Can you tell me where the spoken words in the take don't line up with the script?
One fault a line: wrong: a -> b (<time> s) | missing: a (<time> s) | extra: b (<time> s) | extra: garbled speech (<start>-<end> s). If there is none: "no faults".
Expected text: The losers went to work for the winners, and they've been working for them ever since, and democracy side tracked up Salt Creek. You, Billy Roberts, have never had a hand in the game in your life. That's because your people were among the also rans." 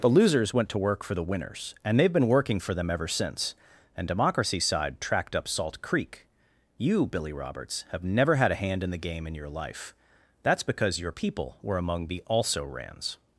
no faults